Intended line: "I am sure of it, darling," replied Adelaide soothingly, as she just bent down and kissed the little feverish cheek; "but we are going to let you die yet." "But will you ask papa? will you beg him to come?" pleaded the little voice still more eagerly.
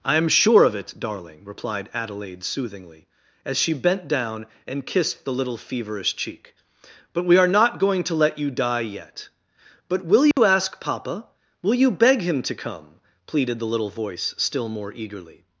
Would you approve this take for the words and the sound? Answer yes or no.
no